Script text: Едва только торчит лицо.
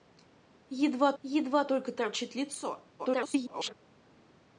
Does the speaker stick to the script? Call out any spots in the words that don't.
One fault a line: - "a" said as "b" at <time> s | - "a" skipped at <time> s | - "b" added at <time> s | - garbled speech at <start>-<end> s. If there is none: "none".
- "едва" added at 1.2 s
- garbled speech at 3.0-3.7 s